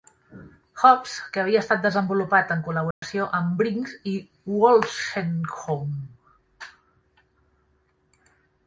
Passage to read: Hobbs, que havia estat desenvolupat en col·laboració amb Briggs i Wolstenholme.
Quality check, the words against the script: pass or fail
pass